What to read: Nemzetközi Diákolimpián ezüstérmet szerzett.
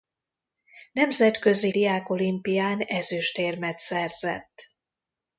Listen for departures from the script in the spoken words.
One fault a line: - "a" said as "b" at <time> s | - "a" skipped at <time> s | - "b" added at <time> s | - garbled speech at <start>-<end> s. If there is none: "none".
none